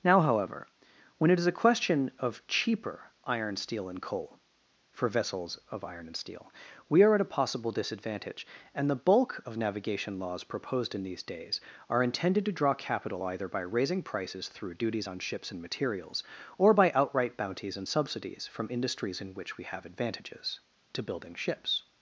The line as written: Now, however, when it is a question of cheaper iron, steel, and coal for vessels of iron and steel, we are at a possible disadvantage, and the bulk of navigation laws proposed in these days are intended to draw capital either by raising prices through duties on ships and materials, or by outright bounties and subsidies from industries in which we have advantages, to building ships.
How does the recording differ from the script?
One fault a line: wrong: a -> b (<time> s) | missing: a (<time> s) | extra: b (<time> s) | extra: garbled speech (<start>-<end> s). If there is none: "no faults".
no faults